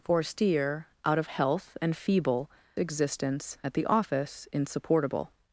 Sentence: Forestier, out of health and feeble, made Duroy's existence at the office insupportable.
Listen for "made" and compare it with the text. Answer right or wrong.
wrong